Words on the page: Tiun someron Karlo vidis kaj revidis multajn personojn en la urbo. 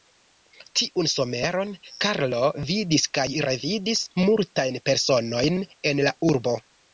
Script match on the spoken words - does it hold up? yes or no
yes